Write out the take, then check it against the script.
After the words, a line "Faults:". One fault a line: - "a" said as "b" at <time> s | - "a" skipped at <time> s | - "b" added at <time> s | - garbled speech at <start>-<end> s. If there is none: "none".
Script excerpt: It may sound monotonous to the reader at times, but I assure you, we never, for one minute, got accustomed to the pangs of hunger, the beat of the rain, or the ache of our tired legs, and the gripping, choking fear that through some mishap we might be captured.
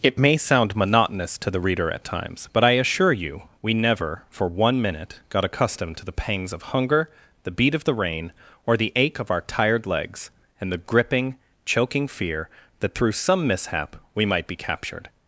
It may sound monotonous to the reader at times, but I assure you, we never, for one minute, got accustomed to the pangs of hunger, the beat of the rain, or the ache of our tired legs, and the gripping, choking fear that through some mishap we might be captured.
Faults:
none